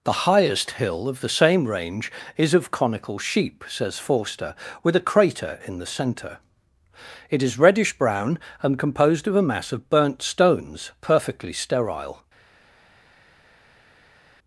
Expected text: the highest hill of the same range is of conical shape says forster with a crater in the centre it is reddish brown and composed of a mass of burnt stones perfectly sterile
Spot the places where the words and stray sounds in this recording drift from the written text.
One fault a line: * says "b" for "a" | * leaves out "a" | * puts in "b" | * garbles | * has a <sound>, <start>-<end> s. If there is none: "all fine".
* says "sheep" for "shape"